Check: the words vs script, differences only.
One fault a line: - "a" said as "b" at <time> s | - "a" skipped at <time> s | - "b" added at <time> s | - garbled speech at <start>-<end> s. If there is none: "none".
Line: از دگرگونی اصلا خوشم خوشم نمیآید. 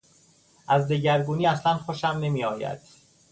- "خوشم" skipped at 2.1 s